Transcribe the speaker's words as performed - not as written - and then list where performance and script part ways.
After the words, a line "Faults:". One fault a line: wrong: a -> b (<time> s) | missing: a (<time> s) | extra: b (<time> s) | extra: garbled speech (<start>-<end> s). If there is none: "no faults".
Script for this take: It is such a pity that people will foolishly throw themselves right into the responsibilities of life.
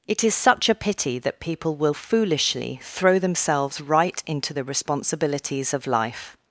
It is such a pity that people will foolishly throw themselves right into the responsibilities of life.
Faults:
no faults